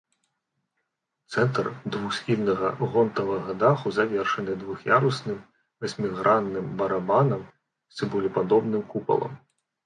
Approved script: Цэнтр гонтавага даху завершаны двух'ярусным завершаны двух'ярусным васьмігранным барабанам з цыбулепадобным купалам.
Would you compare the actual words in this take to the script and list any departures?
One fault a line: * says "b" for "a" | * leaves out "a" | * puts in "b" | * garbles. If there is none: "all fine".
* puts in "двухсхільнага"
* leaves out "завершаны двух'ярусным"